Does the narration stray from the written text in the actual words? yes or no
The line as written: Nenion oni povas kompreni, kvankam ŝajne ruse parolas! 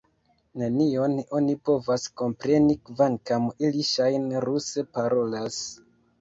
yes